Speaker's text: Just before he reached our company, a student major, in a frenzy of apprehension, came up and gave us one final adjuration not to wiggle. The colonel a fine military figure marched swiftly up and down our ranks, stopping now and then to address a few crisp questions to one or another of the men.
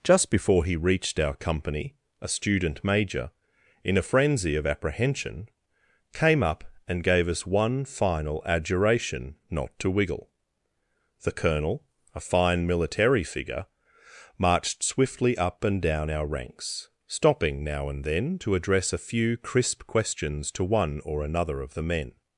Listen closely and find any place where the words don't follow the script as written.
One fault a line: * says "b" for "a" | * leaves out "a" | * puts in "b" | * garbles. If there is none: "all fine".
all fine